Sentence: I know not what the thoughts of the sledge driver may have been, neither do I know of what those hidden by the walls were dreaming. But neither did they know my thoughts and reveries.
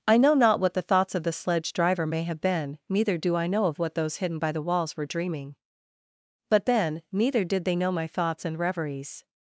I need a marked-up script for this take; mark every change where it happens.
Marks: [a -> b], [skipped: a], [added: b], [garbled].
I know not what the thoughts of the sledge driver may have been, neither do I know of what those hidden by the walls were dreaming. But [added: then] neither did they know my thoughts and reveries.